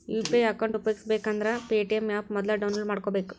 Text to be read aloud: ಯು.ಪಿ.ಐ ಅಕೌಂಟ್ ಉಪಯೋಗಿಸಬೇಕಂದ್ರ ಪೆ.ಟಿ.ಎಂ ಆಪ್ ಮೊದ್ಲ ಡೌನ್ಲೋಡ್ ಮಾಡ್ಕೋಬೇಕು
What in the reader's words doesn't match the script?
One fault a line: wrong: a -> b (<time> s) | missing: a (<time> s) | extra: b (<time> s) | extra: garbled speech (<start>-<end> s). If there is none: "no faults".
no faults